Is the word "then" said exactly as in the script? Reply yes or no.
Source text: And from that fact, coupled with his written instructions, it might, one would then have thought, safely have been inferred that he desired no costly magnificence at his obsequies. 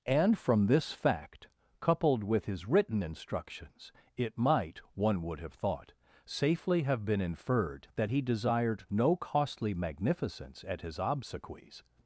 no